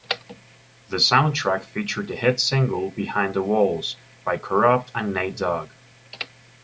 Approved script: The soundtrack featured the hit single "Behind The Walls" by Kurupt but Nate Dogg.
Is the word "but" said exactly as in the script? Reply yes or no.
no